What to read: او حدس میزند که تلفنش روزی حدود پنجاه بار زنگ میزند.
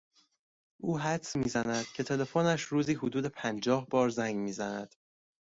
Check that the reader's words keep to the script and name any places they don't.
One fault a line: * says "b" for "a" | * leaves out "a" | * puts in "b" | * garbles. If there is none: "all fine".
all fine